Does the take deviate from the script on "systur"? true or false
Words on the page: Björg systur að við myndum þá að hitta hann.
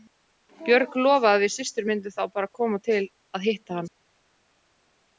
true